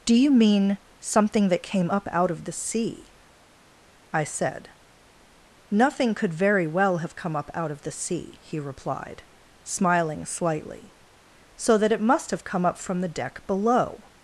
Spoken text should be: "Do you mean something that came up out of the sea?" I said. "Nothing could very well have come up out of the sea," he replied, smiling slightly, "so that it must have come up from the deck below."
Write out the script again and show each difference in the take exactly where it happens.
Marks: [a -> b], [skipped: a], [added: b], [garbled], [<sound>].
"Do you mean something that came up out of the sea?" I said. "Nothing could very well have come up out of the sea," he replied, smiling slightly, "so that it must have come up from the deck below."